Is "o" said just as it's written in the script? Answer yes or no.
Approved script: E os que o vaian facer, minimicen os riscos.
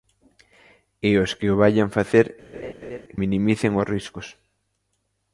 yes